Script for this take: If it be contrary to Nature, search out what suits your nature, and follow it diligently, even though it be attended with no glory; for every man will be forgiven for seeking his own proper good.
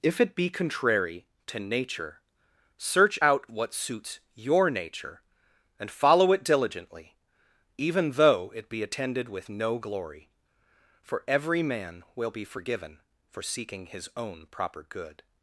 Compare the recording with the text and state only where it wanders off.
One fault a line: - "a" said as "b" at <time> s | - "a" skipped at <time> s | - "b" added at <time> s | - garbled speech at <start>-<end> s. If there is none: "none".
none